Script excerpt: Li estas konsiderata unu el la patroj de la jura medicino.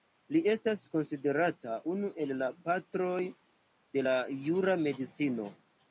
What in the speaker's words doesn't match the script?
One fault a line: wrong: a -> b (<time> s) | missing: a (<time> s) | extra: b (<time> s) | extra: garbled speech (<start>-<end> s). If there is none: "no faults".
no faults